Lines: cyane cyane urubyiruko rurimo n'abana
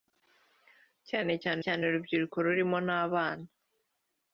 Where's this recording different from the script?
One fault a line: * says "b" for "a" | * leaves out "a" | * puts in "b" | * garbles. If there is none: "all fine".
* puts in "cyane"